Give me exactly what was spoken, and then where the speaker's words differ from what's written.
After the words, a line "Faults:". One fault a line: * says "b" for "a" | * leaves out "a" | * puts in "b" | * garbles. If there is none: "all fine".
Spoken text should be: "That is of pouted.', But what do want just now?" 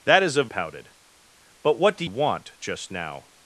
"That is of pouted.', But what do want just now?"
Faults:
all fine